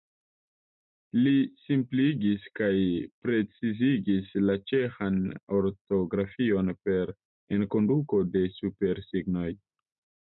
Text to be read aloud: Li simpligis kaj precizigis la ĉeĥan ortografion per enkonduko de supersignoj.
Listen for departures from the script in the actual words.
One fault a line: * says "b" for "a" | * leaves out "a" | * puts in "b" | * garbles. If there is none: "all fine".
all fine